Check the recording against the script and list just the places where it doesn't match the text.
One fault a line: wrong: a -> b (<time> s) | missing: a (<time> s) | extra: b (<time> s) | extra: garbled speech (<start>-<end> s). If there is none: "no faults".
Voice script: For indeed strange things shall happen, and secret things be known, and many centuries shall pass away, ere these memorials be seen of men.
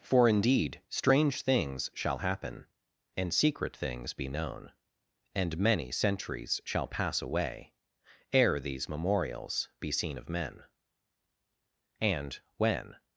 extra: And when (12.0 s)